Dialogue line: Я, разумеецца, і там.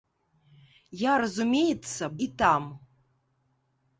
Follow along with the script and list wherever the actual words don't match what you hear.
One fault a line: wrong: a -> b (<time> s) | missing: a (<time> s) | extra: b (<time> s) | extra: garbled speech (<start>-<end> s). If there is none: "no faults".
no faults